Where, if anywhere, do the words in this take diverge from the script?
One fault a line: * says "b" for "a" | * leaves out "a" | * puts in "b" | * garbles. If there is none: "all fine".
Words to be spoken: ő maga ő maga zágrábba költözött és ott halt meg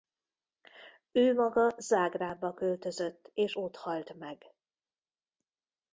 * leaves out "ő maga"